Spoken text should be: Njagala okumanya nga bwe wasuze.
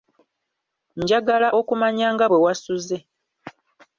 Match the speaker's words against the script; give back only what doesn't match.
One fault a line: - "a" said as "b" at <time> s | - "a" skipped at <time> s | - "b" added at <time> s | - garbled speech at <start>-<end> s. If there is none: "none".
none